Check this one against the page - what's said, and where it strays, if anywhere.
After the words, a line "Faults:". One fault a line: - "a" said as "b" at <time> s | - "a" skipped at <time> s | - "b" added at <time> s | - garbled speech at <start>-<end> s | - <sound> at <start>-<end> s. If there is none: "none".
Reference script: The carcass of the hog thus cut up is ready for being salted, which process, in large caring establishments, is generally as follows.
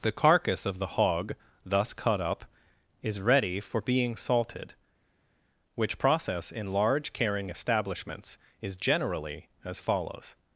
The carcass of the hog thus cut up is ready for being salted, which process, in large caring establishments, is generally as follows.
Faults:
none